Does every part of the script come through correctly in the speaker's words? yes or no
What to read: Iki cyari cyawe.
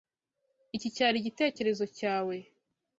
no